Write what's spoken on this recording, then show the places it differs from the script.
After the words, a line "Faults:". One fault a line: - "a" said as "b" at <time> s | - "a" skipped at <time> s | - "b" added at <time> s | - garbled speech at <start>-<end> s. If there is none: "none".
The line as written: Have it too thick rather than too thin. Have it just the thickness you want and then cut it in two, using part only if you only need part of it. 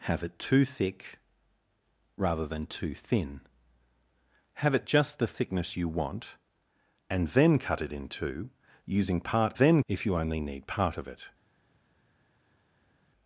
Have it too thick rather than too thin. Have it just the thickness you want and then cut it in two, using part then if you only need part of it.
Faults:
- "only" said as "then" at 9.5 s